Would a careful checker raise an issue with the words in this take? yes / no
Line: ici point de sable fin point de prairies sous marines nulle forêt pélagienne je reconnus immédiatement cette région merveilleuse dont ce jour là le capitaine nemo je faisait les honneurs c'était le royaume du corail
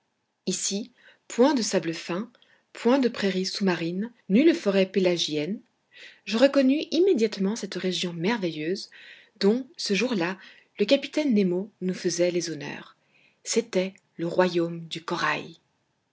yes